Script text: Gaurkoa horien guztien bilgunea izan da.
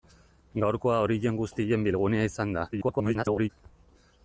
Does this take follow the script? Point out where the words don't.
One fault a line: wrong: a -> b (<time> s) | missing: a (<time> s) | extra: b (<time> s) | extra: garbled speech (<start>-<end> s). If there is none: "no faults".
extra: garbled speech (2.7-3.5 s)